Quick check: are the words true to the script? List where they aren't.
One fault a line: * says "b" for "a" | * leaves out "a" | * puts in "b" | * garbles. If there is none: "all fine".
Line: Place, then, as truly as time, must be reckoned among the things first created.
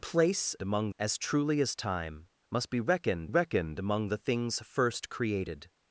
* says "among" for "then"
* puts in "reckoned"